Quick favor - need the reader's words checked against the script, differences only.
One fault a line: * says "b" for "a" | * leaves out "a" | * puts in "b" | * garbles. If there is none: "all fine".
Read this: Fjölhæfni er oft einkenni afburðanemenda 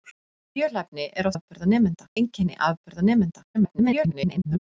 * says "afburðanemenda" for "oft"
* garbles